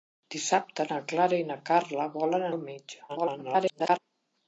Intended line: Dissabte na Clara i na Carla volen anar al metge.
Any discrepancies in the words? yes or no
yes